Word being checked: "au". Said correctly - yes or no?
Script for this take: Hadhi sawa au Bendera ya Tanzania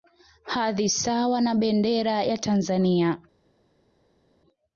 no